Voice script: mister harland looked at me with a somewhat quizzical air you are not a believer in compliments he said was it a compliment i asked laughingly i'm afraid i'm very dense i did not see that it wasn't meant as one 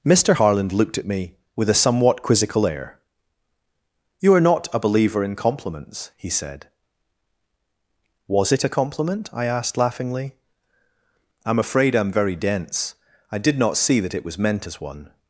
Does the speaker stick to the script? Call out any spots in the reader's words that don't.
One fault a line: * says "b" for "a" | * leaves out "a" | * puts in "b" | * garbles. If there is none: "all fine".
* says "was" for "wasn't"